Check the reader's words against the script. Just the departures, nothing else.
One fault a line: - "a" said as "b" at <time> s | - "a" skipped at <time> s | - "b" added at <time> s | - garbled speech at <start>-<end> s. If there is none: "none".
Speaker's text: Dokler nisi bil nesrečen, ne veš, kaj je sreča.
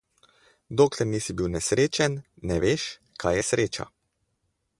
none